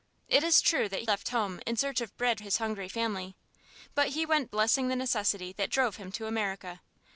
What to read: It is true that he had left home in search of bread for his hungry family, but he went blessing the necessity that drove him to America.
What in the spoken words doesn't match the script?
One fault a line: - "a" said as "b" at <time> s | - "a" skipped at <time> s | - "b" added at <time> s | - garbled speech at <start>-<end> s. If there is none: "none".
- "he had" skipped at 1.0 s
- "for" skipped at 2.4 s